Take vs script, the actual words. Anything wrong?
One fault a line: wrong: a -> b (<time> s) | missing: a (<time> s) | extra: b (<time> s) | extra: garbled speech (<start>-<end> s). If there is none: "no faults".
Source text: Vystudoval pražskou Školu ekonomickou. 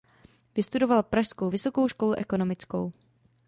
extra: Vysokou (1.5 s)